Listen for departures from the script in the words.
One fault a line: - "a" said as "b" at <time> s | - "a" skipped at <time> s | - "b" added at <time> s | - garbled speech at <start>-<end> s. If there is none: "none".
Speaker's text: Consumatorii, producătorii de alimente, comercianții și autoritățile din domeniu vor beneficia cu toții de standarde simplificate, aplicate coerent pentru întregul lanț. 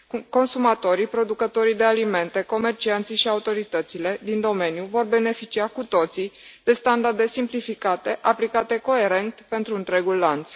none